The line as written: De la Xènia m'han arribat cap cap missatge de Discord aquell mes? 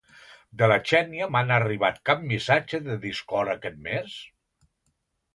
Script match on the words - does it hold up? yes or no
no